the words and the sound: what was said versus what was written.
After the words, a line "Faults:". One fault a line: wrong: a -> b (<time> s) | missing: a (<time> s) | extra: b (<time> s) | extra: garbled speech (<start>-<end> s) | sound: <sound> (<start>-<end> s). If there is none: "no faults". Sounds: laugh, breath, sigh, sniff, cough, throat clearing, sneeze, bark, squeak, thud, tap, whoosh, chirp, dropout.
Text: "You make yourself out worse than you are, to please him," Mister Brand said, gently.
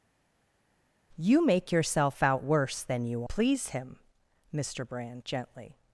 "You make yourself out worse than you please him," Mister Brand gently.
Faults:
missing: are to (3.2 s)
missing: said (5.2 s)